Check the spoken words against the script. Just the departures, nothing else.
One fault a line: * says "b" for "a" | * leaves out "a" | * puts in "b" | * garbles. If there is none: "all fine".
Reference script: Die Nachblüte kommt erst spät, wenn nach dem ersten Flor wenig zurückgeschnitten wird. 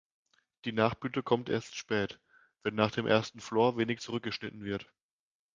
all fine